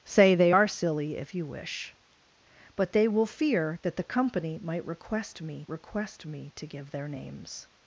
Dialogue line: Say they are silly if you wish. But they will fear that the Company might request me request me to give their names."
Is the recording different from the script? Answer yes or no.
no